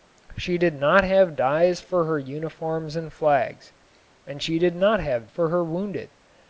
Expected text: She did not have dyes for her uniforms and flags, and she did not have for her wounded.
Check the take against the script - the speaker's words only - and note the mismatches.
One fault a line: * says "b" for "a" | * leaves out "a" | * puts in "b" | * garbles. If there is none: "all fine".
all fine